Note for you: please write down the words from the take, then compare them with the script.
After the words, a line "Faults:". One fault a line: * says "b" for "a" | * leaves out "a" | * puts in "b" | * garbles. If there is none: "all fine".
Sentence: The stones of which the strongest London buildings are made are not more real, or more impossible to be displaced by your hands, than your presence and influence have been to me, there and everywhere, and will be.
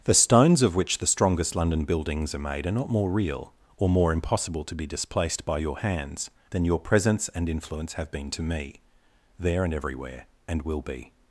The stones of which the strongest London buildings are made are not more real, or more impossible to be displaced by your hands, than your presence and influence have been to me, there and everywhere, and will be.
Faults:
all fine